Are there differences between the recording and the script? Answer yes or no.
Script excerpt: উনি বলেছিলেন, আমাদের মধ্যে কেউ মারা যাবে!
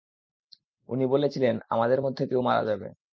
no